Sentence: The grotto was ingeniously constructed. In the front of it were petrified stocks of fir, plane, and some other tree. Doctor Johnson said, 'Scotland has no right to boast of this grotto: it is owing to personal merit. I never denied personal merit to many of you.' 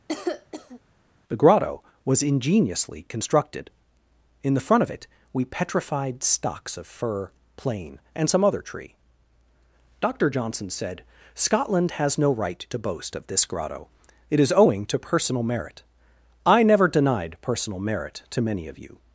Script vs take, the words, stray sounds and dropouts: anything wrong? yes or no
yes